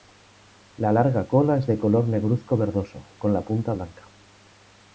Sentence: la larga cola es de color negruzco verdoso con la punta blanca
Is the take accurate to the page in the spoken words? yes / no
yes